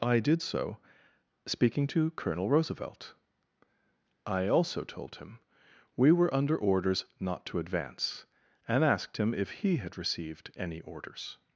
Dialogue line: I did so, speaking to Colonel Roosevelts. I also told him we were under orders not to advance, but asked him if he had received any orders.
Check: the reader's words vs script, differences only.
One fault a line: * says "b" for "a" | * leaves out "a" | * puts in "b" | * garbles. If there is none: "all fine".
* says "Roosevelt" for "Roosevelts"
* says "and" for "but"